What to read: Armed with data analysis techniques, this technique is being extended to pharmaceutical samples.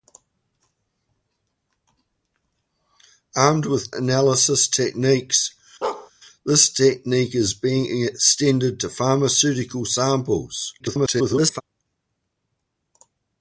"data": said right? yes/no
no